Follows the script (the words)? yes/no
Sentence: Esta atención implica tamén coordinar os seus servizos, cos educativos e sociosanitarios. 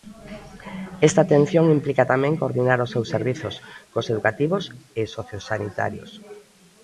yes